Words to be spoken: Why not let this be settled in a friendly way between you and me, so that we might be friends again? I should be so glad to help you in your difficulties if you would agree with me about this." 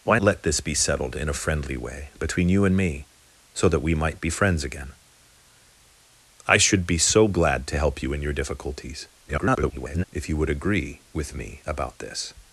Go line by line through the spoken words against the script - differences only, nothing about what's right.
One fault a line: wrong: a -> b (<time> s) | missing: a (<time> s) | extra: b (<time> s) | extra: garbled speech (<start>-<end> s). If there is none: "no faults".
missing: not (0.2 s)
extra: garbled speech (9.3-10.0 s)